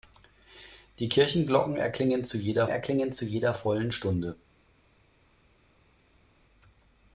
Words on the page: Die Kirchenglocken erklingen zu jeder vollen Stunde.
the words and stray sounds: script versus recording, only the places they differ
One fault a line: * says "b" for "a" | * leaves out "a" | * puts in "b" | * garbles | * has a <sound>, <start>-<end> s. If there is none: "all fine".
* puts in "erklingen zu jeder"